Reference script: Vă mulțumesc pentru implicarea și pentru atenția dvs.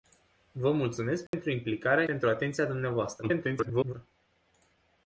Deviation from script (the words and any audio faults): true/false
true